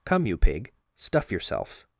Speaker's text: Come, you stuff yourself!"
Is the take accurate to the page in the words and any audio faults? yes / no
no